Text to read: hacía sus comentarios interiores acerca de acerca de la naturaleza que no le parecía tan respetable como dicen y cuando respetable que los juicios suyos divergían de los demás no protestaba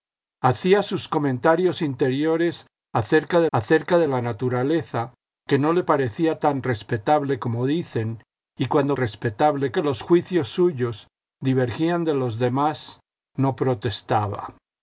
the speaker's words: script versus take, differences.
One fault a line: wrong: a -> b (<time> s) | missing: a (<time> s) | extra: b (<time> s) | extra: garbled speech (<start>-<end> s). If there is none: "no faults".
no faults